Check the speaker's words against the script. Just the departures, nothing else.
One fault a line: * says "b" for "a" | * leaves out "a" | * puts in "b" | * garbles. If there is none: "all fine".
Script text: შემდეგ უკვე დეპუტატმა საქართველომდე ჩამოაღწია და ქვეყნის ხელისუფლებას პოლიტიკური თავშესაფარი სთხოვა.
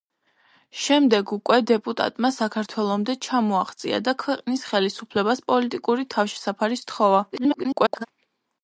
* garbles